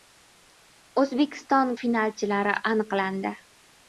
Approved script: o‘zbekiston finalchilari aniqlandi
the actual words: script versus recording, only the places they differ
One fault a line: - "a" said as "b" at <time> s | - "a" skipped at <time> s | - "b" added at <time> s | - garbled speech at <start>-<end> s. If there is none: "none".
none